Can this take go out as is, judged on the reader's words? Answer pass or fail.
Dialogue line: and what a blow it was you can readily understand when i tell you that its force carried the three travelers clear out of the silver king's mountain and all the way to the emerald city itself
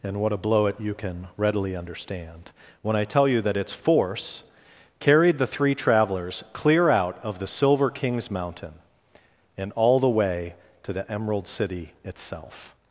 fail